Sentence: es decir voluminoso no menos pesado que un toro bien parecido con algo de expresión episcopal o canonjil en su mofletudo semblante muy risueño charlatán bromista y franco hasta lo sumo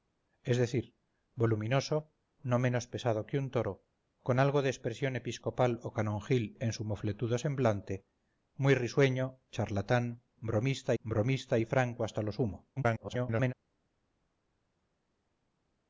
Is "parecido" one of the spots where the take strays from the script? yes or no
yes